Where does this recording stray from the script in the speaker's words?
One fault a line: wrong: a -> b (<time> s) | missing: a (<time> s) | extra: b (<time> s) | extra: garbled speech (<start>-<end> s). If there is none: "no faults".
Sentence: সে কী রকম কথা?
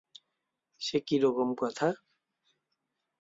no faults